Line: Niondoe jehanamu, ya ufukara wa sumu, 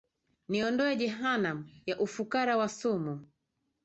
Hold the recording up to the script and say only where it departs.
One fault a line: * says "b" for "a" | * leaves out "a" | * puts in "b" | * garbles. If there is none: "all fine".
all fine